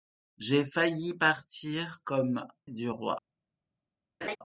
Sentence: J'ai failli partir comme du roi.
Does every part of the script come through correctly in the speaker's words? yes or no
yes